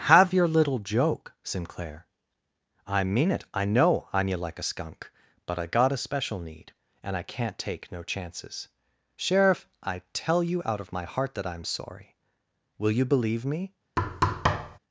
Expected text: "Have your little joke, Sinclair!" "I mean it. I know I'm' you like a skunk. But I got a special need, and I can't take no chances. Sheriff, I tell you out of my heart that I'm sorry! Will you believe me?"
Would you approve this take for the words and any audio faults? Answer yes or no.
no